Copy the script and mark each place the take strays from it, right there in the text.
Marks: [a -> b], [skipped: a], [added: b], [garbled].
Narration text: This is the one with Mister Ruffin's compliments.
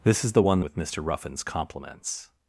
This is the one with Mister Ruffin's compliments.